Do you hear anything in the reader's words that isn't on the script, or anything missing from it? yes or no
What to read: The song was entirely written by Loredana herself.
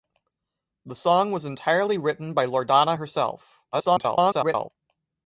yes